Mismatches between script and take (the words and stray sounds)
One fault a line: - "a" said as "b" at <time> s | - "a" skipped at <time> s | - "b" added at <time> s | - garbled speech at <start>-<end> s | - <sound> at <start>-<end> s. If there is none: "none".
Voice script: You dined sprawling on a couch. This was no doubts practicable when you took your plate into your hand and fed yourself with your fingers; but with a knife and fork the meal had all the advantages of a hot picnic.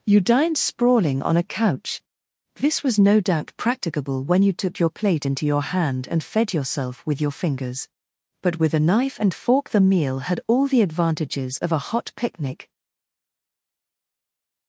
- "doubts" said as "doubt" at 3.2 s